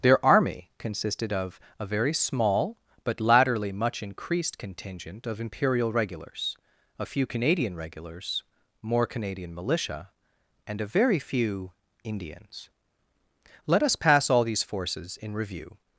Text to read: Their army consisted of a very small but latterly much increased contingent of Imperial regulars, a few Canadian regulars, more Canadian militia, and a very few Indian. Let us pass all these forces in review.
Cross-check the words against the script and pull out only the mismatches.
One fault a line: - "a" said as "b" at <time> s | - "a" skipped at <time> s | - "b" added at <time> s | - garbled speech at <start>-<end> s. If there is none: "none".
- "Indian" said as "Indians" at 12.0 s